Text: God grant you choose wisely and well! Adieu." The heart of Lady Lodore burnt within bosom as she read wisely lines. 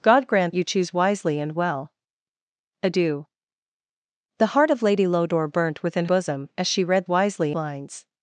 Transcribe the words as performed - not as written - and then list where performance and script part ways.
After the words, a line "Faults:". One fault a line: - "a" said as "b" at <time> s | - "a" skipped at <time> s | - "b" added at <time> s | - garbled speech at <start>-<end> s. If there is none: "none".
God grant you choose wisely and well! Adieu." The heart of Lady Lodore burnt within bosom as she read wisely lines.
Faults:
none